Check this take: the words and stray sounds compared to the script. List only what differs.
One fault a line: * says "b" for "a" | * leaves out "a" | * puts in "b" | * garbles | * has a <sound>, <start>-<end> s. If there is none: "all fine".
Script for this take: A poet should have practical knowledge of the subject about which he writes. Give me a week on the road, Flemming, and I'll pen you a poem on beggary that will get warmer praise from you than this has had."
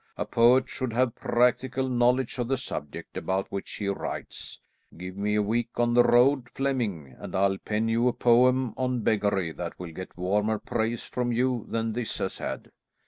all fine